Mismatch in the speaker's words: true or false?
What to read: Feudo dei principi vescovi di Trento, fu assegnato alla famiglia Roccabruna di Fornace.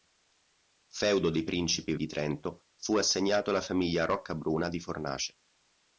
true